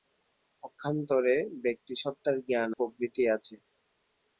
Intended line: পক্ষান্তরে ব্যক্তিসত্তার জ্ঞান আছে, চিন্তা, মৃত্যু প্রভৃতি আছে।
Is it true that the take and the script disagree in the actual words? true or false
true